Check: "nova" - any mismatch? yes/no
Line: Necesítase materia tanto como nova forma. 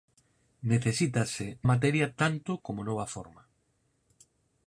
no